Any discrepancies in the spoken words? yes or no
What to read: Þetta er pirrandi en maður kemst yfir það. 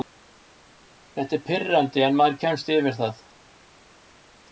no